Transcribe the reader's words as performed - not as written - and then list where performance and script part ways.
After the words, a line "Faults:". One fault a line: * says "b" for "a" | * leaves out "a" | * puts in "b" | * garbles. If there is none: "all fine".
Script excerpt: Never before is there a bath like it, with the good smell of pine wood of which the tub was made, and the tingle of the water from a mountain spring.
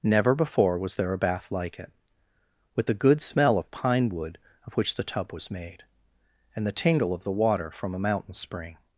Never before was there a bath like it, with the good smell of pine wood of which the tub was made, and the tingle of the water from a mountain spring.
Faults:
* says "was" for "is"